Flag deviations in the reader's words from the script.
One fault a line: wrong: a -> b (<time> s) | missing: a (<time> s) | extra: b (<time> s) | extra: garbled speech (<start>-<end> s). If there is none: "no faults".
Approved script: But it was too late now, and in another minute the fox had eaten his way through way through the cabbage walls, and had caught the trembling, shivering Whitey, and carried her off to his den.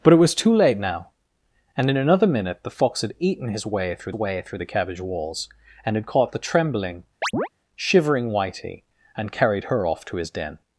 no faults